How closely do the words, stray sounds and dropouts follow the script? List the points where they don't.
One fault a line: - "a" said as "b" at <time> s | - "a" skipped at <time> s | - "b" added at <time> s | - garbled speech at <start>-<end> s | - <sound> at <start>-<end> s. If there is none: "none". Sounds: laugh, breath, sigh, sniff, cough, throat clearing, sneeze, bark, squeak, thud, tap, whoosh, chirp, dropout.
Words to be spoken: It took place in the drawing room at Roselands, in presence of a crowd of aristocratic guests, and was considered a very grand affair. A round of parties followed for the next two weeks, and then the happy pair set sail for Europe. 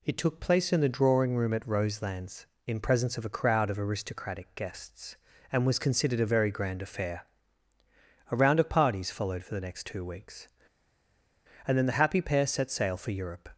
none